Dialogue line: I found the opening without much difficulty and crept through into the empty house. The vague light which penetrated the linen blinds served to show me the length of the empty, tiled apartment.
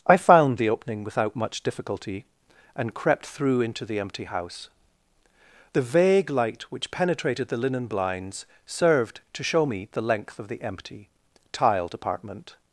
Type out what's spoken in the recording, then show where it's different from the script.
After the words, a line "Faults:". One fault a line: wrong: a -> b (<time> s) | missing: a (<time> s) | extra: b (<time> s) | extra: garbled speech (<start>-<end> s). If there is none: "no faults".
I found the opening without much difficulty and crept through into the empty house. The vague light which penetrated the linen blinds served to show me the length of the empty, tiled apartment.
Faults:
no faults